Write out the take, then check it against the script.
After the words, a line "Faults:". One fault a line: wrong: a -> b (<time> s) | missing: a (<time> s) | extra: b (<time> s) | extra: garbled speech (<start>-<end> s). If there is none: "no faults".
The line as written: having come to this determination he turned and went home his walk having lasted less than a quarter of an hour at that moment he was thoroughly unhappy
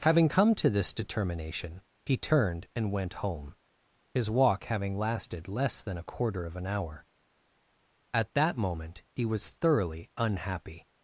having come to this determination he turned and went home his walk having lasted less than a quarter of an hour at that moment he was thoroughly unhappy
Faults:
no faults